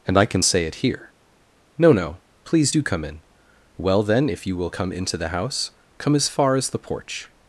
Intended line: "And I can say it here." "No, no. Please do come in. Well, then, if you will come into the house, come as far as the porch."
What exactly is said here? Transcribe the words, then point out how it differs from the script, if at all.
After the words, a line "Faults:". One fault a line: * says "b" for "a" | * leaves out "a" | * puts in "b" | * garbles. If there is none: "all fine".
"And I can say it here." "No, no. Please do come in. Well, then, if you will come into the house, come as far as the porch."
Faults:
all fine